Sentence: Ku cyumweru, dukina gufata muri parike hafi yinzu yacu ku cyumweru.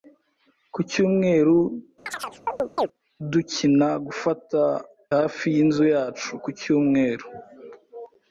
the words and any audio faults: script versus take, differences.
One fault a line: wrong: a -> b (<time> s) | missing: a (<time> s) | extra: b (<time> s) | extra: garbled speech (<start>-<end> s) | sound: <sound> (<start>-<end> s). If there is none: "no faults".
sound: chirp (2.1-2.9 s)
missing: muri parike (4.6 s)